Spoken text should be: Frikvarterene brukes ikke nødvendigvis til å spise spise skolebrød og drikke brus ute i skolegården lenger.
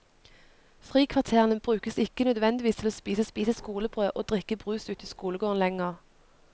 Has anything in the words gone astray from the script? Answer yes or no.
no